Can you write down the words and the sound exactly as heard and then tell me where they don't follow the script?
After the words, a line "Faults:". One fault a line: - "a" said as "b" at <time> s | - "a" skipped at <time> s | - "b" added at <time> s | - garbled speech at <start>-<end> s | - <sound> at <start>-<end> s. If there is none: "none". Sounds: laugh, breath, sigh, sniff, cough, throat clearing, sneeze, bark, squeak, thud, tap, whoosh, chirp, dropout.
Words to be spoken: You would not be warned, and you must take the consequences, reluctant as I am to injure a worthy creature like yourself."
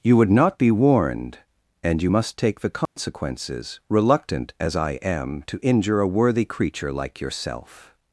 You would not be warned, and you must take the consequences, reluctant as I am to injure a worthy creature like yourself."
Faults:
- dropout at 2.9-3.0 s